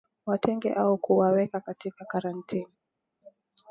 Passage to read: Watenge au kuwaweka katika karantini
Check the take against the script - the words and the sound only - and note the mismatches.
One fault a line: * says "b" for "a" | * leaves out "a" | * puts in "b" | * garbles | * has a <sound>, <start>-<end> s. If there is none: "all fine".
all fine